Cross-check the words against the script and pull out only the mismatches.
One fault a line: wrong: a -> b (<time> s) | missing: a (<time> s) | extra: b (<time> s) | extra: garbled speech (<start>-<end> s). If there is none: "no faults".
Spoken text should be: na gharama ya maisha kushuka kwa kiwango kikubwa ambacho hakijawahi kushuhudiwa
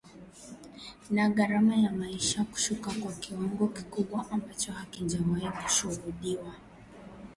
no faults